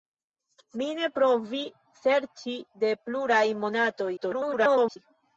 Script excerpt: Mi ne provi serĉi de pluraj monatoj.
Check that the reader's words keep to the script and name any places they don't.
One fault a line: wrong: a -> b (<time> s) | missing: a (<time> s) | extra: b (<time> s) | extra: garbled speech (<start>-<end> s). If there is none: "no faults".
extra: garbled speech (4.2-5.0 s)